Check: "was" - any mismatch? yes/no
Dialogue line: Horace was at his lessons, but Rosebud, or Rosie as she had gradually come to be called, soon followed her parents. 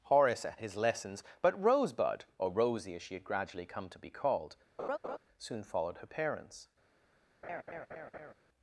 yes